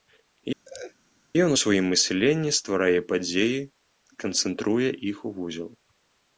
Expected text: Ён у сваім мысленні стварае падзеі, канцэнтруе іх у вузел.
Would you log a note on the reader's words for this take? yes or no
no